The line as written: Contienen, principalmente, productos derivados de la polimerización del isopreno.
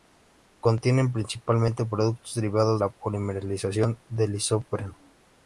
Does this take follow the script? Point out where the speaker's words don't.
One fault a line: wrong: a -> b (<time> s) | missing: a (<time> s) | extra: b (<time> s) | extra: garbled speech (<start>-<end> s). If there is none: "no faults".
missing: de (2.8 s)